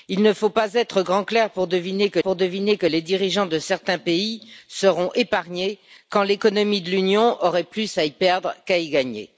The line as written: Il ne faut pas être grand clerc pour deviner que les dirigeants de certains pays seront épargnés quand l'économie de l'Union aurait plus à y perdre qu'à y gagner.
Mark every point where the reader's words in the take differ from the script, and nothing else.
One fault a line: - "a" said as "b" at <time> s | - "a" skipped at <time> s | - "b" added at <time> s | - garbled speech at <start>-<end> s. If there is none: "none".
- "pour deviner que" added at 2.2 s